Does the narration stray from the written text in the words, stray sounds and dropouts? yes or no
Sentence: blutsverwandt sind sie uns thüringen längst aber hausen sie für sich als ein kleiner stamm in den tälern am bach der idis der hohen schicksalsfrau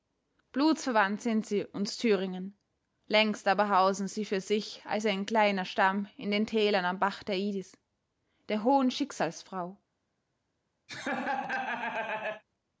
yes